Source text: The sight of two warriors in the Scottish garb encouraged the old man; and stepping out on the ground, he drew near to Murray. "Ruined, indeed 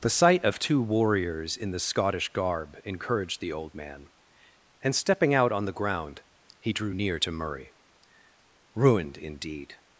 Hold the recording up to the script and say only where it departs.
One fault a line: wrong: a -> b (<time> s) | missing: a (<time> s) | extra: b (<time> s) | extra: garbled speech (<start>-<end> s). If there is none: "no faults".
no faults